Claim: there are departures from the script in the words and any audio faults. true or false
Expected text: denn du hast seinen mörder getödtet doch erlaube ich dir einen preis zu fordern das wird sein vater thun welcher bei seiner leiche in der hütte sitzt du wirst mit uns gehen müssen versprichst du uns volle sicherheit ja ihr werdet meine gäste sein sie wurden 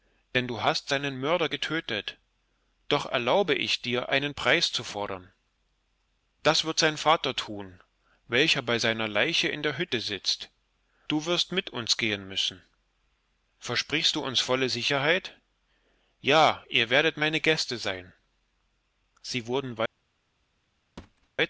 true